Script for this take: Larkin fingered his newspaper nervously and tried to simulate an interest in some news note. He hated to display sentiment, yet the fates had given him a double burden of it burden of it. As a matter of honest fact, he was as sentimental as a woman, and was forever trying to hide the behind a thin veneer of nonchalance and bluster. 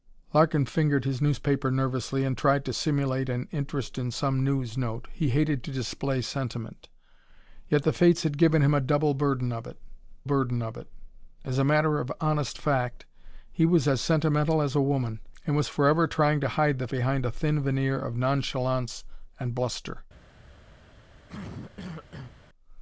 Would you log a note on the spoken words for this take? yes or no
no